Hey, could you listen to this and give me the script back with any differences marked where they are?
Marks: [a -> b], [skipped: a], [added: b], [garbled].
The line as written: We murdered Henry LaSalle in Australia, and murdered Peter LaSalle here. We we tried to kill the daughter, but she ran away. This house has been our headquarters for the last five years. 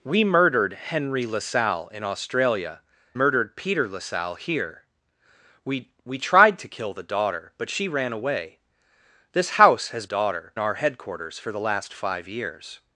We murdered Henry LaSalle in Australia, [skipped: and] murdered Peter LaSalle here. We we tried to kill the daughter, but she ran away. This house has [been -> daughter] our headquarters for the last five years.